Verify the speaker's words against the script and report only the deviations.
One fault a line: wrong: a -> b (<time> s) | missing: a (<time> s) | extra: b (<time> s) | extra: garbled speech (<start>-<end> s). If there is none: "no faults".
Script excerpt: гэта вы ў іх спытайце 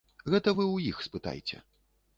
no faults